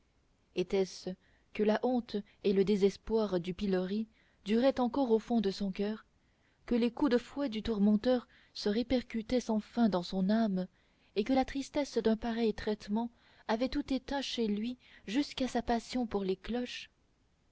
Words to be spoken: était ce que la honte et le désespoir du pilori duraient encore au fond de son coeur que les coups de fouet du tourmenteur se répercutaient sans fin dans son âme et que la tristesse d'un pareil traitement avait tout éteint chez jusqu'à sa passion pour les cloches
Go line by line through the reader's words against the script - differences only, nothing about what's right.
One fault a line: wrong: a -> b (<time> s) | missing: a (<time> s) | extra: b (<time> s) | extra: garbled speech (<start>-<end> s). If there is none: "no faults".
extra: lui (14.5 s)